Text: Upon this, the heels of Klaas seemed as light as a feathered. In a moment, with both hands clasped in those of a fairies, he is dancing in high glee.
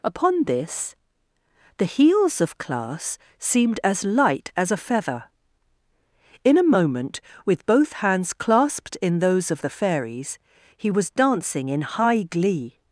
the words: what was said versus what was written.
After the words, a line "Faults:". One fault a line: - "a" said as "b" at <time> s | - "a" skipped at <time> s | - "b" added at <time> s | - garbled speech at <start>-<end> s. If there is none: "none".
Upon this, the heels of Klaas seemed as light as a feather. In a moment, with both hands clasped in those of the fairies, he was dancing in high glee.
Faults:
- "feathered" said as "feather" at 4.8 s
- "a" said as "the" at 9.6 s
- "is" said as "was" at 10.9 s